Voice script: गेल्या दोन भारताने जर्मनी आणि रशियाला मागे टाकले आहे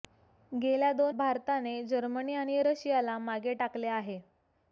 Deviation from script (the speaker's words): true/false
false